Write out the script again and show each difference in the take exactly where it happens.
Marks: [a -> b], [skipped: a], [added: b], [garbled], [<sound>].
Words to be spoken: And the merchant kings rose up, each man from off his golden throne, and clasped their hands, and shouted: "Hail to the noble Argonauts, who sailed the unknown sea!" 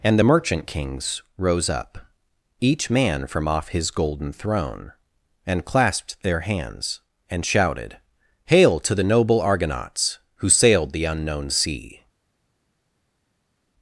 And the merchant kings rose up, each man from off his golden throne, and clasped their hands, and shouted: "Hail to the noble Argonauts, who sailed the unknown sea!"